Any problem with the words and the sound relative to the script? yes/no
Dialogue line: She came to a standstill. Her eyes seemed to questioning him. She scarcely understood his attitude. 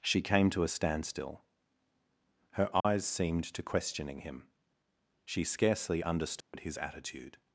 yes